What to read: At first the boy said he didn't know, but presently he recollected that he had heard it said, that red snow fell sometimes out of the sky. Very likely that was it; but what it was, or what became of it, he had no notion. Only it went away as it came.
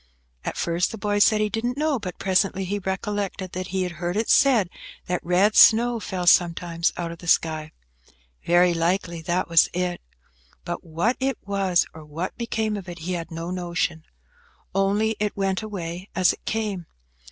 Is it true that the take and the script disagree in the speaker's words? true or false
false